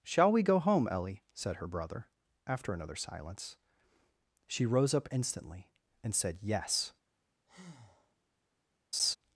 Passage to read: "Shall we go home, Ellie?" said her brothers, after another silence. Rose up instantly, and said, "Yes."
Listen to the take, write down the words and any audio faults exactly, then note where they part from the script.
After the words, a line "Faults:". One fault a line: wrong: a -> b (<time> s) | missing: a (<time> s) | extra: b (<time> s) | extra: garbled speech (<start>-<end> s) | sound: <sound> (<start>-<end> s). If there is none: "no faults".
"Shall we go home, Ellie?" said her brother, after another silence. She rose up instantly, and said, "Yes."
Faults:
wrong: brothers -> brother (1.7 s)
extra: She (4.5 s)
sound: breath (7.5-8.2 s)
sound: laugh (8.9-9.2 s)